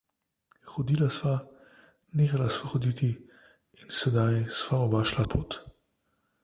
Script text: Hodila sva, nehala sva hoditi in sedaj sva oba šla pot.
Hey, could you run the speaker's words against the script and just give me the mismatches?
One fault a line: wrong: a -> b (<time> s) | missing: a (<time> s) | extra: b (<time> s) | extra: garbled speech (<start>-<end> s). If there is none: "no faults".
no faults